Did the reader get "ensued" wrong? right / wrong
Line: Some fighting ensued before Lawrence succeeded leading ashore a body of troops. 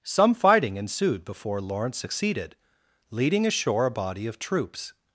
right